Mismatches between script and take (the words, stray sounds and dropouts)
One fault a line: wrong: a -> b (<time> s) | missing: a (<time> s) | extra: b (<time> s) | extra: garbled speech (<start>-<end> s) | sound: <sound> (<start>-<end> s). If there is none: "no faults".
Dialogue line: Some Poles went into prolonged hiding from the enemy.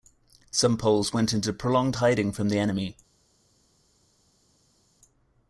no faults